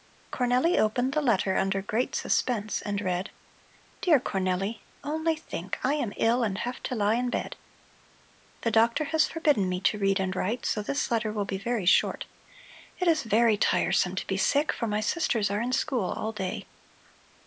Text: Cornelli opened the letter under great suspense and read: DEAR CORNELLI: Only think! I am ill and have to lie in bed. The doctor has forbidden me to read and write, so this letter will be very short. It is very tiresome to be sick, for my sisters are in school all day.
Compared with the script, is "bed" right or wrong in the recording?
right